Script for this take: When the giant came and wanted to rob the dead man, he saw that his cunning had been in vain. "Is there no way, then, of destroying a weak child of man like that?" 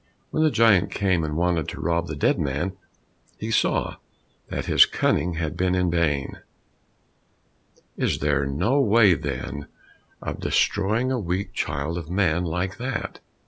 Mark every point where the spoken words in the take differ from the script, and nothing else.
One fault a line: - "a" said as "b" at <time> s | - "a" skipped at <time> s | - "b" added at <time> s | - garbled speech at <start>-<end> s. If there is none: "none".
none